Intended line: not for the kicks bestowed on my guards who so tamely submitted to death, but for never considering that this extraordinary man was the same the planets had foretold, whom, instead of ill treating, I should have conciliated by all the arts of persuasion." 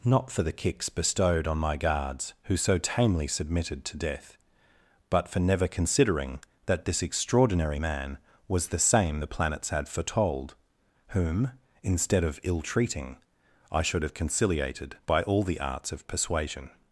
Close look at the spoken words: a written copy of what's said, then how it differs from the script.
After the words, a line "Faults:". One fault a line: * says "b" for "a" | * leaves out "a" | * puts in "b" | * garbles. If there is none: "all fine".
not for the kicks bestowed on my guards who so tamely submitted to death, but for never considering that this extraordinary man was the same the planets had foretold, whom, instead of ill treating, I should have conciliated by all the arts of persuasion."
Faults:
all fine